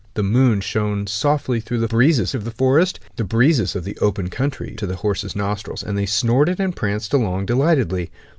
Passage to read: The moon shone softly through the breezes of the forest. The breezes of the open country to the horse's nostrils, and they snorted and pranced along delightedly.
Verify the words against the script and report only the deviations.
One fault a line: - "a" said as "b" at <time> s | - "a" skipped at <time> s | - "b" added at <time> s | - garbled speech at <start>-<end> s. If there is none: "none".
none